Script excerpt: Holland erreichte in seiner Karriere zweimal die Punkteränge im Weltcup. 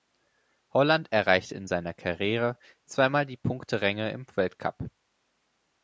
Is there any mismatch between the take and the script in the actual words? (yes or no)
no